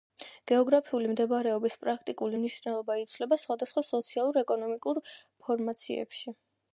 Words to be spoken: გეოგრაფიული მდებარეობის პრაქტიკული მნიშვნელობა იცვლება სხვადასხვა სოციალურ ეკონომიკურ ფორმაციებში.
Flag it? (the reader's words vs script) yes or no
no